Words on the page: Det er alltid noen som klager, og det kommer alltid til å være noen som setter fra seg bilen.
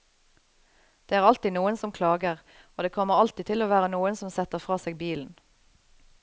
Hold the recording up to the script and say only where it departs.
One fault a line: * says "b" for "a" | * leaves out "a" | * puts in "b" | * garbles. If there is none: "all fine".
all fine